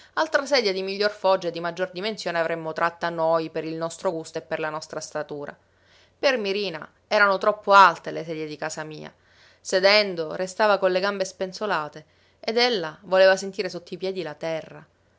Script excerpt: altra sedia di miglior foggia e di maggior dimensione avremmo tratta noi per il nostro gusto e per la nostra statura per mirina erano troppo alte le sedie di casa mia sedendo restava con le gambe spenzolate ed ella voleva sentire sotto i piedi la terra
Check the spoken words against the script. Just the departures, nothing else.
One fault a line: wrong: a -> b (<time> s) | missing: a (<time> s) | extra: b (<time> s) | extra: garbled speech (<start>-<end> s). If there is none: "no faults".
no faults